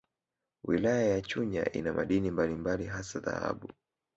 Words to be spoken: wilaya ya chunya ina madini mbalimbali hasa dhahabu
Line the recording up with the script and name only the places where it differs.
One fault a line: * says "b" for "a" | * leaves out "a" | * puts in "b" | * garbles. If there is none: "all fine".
all fine